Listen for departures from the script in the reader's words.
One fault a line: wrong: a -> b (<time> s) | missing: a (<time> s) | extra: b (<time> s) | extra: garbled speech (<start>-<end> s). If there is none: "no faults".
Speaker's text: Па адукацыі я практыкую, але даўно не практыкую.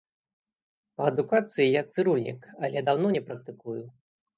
wrong: практыкую -> цырульнік (1.9 s)